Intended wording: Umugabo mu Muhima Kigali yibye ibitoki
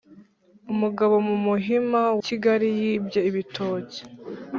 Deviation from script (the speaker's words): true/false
false